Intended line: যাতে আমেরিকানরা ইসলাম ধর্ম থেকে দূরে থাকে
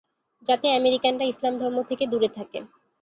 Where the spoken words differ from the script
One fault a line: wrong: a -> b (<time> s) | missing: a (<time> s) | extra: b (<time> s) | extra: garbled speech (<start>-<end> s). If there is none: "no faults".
no faults